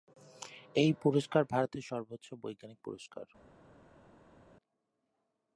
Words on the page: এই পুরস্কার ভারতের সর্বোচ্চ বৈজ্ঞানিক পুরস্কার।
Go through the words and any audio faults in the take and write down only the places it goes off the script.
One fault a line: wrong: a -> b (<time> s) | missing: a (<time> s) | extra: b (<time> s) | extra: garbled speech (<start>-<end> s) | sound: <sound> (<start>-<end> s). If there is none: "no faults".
no faults